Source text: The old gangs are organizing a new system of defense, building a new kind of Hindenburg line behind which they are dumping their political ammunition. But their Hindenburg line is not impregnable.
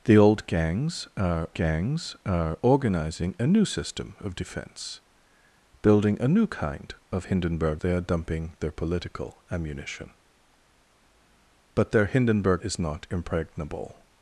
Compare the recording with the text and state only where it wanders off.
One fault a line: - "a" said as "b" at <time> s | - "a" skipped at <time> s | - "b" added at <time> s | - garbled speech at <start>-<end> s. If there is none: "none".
- "gangs are" added at 1.5 s
- "line behind which" skipped at 7.8 s
- "line" skipped at 12.6 s